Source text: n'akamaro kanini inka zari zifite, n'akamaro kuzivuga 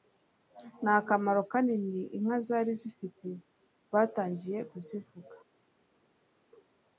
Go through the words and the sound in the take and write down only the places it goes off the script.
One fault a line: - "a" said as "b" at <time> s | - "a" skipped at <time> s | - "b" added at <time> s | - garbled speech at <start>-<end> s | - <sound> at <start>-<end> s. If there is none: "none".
- "n'akamaro" said as "batangiye" at 3.9 s